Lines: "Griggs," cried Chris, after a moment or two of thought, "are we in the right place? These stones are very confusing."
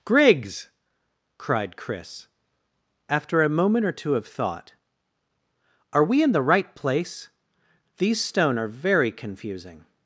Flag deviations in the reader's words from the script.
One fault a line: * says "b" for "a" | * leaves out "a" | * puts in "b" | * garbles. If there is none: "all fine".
* says "stone" for "stones"